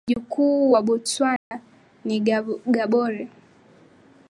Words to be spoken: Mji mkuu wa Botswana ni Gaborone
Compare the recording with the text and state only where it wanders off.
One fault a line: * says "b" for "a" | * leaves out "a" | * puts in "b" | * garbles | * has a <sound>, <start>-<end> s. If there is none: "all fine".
* has a dropout, 1.4-1.5 s